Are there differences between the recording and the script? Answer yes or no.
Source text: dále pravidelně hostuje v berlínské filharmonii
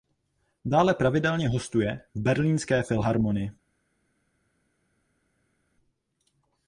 no